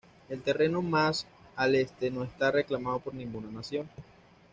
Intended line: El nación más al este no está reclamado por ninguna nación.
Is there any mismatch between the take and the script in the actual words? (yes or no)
yes